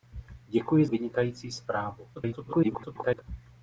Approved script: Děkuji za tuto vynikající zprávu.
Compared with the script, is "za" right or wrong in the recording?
wrong